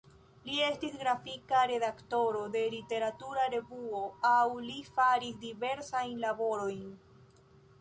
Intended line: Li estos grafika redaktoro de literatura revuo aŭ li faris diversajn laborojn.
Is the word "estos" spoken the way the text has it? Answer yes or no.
no